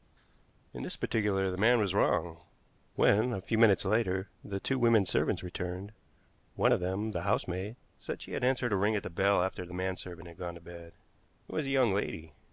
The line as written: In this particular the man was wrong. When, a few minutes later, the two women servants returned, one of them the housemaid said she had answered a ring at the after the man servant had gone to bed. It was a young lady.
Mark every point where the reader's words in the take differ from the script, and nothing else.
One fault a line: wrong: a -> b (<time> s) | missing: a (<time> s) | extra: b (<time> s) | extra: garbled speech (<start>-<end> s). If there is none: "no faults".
extra: bell (9.1 s)